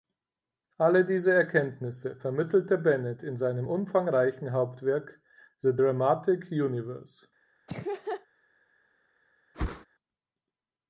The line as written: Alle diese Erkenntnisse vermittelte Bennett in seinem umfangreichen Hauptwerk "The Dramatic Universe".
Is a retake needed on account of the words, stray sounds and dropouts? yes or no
yes